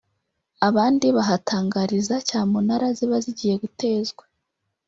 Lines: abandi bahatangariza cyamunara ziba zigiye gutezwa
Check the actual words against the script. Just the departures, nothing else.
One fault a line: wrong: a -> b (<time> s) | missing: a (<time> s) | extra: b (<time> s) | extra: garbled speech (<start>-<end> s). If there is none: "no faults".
no faults